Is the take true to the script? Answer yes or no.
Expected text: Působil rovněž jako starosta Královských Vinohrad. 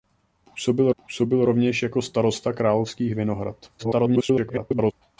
no